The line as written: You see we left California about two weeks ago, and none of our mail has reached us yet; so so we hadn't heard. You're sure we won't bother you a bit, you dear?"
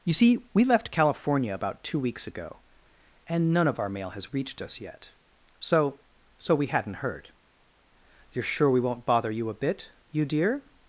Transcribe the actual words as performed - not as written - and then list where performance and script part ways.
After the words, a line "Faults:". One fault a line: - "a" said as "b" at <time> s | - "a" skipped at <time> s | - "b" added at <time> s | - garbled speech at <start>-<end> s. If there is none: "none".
You see we left California about two weeks ago, and none of our mail has reached us yet; so so we hadn't heard. You're sure we won't bother you a bit, you dear?"
Faults:
none